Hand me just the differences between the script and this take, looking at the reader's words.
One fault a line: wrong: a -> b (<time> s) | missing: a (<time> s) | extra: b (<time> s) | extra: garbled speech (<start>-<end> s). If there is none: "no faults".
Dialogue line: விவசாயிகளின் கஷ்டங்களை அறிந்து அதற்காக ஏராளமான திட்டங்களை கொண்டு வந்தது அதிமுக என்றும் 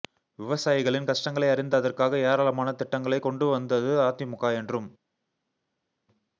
no faults